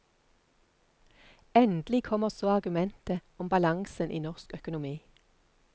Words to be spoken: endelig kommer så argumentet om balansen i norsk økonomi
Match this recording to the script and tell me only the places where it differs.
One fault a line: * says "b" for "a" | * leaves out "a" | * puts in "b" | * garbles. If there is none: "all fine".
all fine